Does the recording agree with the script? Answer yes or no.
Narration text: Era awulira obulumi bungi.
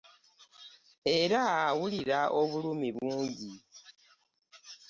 yes